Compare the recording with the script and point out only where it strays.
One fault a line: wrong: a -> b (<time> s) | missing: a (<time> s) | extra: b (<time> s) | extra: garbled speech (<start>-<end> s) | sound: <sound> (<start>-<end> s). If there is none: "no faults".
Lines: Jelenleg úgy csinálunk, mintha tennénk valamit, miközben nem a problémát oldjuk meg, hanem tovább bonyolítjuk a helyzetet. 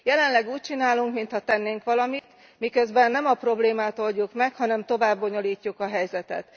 sound: dropout (2.2-2.2 s)